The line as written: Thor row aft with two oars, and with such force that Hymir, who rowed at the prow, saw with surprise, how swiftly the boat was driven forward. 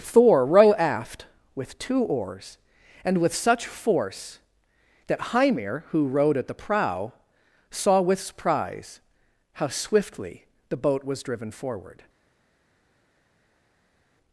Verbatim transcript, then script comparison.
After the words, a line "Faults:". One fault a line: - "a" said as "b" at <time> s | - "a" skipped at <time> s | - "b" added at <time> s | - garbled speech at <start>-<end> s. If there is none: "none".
Thor row aft with two oars, and with such force that Hymir, who rowed at the prow, saw with surprise, how swiftly the boat was driven forward.
Faults:
none